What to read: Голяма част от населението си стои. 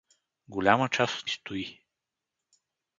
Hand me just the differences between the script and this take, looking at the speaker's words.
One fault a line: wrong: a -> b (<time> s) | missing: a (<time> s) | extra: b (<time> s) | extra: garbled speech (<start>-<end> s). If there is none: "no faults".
missing: населението си (1.3 s)